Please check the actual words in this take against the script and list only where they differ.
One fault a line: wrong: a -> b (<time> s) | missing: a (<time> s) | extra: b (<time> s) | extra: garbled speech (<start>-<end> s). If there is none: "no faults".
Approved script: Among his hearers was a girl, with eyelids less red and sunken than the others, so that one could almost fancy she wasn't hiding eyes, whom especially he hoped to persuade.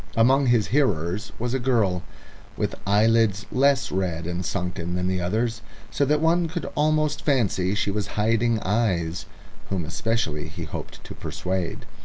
wrong: wasn't -> was (7.9 s)